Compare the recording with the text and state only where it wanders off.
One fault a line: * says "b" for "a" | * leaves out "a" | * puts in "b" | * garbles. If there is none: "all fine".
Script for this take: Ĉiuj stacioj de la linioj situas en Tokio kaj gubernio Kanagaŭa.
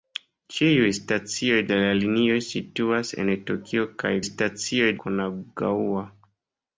* says "stacioj" for "gubernio"